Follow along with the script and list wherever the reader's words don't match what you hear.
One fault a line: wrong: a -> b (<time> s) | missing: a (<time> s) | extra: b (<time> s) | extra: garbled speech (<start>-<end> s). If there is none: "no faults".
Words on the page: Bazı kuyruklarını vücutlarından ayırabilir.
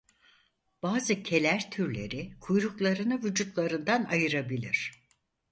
extra: keler türleri (1.2 s)